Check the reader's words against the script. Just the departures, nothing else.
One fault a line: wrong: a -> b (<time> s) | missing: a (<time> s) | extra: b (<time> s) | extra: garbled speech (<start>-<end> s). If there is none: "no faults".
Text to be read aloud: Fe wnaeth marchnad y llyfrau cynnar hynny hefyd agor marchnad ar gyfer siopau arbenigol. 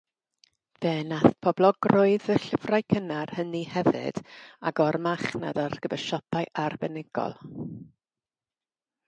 wrong: marchnad -> poblogrwydd (1.5 s)